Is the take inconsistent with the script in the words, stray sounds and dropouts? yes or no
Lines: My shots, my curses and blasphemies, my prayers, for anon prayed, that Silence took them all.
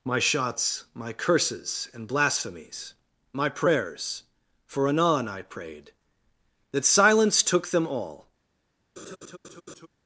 yes